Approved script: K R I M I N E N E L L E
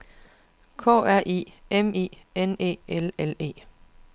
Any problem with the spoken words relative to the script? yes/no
yes